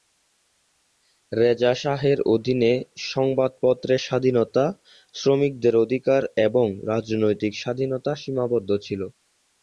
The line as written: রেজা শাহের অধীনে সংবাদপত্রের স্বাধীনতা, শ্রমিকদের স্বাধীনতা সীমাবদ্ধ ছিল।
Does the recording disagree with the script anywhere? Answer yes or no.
yes